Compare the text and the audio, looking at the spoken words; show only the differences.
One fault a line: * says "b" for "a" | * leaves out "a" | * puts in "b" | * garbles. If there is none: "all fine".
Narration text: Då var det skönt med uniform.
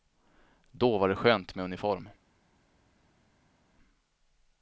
all fine